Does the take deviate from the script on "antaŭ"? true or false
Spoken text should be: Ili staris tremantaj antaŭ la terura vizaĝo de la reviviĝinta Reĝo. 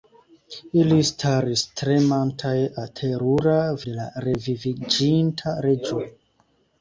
true